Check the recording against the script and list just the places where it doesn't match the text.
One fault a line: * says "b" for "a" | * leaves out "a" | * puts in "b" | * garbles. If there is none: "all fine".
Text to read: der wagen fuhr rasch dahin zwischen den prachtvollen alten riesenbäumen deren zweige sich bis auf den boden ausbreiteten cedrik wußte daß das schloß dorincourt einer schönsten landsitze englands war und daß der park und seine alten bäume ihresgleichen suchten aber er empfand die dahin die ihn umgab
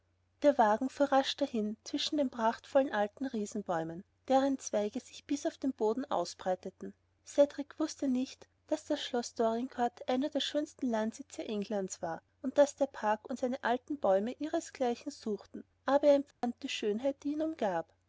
* puts in "nicht"
* puts in "der"
* says "schönheit" for "dahin"